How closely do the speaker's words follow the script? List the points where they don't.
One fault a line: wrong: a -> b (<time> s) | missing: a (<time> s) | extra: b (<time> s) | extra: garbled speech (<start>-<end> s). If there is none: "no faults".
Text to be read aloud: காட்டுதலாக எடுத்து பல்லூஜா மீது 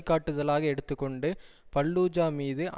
extra: கொண்டு (0.9 s)